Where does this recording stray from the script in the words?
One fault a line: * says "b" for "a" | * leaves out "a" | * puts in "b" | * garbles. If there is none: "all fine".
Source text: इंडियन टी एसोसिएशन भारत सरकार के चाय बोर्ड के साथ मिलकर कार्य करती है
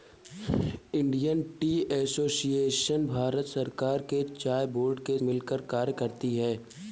* leaves out "साथ"